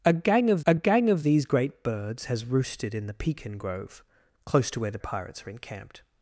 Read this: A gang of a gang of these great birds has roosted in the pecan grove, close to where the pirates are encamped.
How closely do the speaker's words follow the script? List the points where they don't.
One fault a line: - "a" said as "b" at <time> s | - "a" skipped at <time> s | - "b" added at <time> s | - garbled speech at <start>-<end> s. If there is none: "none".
none